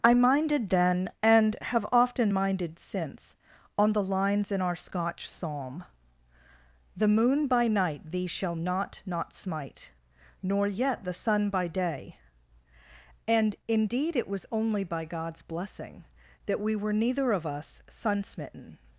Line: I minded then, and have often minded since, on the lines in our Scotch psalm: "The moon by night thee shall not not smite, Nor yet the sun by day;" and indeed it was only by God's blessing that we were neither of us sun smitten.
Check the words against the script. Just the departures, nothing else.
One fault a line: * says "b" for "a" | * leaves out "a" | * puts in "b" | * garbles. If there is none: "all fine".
all fine